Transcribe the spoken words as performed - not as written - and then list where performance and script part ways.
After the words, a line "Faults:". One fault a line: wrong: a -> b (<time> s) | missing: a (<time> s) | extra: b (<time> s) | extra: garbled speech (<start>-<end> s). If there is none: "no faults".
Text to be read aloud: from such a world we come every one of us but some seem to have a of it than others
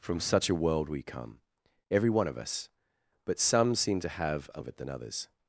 from such a world we come every one of us but some seem to have a of it than others
Faults:
no faults